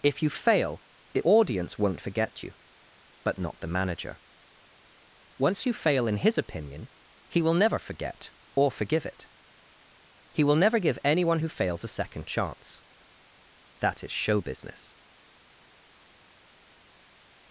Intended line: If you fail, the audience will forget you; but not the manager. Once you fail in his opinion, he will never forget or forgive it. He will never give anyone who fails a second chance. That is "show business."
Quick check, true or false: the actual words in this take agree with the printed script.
false